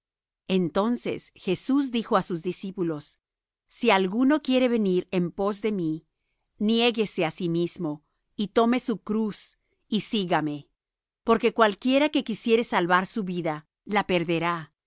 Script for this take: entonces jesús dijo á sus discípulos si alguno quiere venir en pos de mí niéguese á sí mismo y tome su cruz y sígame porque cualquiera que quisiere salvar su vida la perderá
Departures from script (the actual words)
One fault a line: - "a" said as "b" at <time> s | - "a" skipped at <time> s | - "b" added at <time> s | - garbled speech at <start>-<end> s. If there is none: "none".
none